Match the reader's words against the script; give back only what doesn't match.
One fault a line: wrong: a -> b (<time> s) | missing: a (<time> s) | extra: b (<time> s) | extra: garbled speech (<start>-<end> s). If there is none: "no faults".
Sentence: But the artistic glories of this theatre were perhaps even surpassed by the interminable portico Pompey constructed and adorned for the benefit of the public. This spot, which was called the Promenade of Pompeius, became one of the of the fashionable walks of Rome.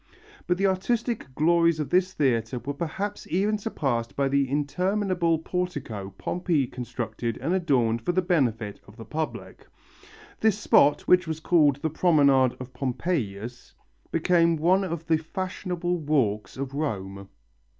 missing: of the (15.2 s)